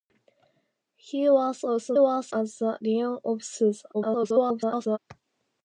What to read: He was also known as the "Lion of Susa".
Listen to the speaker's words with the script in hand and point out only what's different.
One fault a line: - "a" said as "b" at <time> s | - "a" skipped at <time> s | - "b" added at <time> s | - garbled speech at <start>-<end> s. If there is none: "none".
- "known" said as "was" at 2.0 s
- garbled speech at 3.9-5.0 s